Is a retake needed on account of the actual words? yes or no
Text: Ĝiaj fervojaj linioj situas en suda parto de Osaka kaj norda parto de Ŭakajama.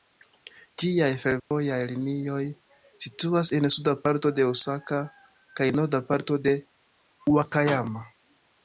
no